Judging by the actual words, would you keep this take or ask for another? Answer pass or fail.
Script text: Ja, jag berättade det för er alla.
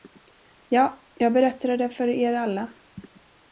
pass